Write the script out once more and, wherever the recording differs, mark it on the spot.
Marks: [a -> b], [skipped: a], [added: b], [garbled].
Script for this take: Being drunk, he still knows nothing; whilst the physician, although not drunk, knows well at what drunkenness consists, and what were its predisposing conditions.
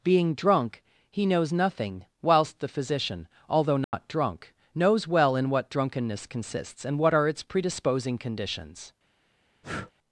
Being drunk, he [skipped: still] knows nothing; whilst the physician, although not drunk, knows well [at -> in] what drunkenness consists, and what [were -> are] its predisposing conditions.